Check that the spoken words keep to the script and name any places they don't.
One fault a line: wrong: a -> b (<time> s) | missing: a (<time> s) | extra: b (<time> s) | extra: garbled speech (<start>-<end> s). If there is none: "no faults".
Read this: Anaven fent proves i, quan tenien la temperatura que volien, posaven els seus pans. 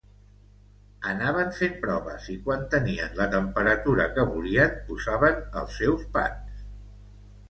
no faults